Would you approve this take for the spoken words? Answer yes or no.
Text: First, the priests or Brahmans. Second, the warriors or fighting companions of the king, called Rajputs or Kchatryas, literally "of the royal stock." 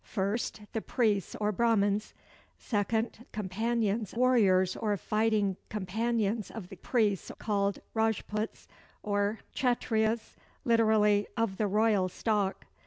no